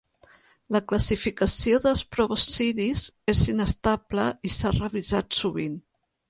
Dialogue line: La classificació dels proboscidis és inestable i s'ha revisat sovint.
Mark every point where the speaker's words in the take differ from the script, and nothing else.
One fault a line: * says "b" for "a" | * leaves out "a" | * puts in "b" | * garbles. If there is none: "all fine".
all fine